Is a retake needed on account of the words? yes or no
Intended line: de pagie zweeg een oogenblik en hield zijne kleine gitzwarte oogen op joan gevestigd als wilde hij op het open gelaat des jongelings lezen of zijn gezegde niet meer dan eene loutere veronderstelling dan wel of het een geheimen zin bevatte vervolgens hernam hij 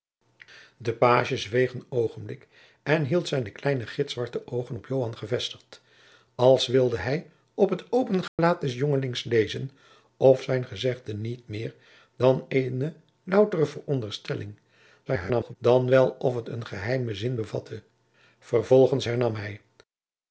yes